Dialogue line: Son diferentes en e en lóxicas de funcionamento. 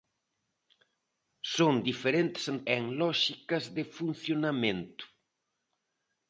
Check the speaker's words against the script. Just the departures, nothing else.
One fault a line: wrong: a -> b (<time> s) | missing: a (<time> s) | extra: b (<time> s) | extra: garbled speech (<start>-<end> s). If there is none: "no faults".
no faults